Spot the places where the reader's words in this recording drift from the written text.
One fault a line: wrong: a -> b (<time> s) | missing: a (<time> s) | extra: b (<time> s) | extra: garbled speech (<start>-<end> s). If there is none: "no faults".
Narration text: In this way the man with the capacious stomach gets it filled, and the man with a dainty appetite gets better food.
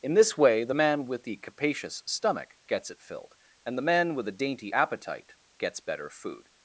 no faults